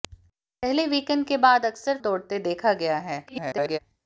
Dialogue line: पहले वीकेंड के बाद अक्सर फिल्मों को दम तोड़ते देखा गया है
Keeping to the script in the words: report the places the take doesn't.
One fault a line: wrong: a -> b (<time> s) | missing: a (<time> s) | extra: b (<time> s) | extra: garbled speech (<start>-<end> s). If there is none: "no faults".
missing: फिल्मों को दम (2.0 s)
extra: garbled speech (3.3-3.8 s)